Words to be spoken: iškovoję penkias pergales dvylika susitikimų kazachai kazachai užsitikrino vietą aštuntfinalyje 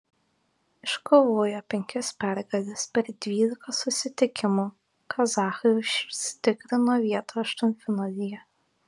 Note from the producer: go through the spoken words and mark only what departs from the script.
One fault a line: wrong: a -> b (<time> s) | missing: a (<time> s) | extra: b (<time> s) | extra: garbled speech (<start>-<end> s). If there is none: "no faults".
extra: per (3.0 s)
missing: kazachai (5.8 s)